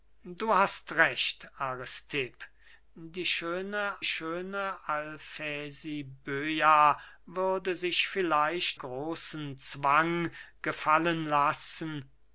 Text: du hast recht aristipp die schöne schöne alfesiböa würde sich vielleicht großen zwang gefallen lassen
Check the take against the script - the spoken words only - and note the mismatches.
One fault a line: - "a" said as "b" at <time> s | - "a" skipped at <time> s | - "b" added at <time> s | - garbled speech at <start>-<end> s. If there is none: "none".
none